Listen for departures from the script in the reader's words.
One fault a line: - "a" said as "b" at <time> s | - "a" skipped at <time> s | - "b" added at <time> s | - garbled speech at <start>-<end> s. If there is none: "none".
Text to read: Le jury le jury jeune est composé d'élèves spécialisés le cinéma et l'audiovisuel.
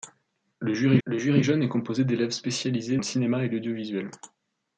none